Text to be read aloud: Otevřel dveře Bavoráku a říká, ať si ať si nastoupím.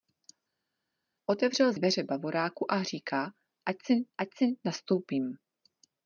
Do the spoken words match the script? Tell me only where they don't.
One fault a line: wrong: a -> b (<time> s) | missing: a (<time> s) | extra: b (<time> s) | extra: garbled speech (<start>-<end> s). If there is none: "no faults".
no faults